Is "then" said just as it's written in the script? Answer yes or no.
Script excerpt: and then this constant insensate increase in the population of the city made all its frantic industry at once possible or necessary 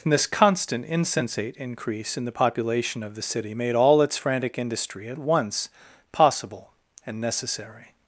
no